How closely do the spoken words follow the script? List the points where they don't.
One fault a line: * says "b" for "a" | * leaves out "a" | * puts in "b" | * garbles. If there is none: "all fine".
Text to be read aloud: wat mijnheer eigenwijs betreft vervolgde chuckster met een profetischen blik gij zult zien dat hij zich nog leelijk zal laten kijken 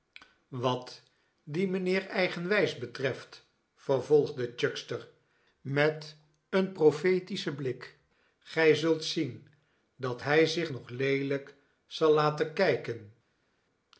* puts in "dien"